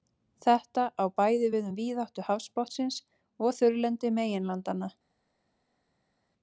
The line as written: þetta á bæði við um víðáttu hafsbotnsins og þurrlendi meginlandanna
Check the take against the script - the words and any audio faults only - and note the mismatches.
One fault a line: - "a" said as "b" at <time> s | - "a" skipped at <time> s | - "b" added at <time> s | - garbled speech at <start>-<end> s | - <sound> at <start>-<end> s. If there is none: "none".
none